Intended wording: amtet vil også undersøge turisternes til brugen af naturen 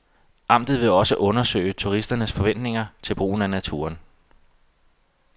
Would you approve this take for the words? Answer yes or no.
no